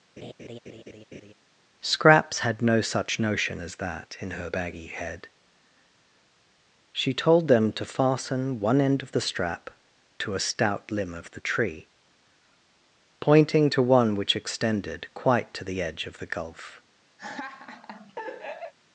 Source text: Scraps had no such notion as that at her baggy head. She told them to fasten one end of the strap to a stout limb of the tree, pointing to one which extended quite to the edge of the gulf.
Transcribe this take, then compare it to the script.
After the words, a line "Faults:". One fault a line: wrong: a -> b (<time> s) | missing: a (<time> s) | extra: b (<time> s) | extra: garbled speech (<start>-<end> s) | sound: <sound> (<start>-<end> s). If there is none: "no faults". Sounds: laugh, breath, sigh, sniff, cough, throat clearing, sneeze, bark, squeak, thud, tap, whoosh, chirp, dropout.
Scraps had no such notion as that in her baggy head. She told them to fasten one end of the strap to a stout limb of the tree, pointing to one which extended quite to the edge of the gulf.
Faults:
sound: laugh (0.2-1.3 s)
wrong: at -> in (4.2 s)
sound: laugh (17.2-18.7 s)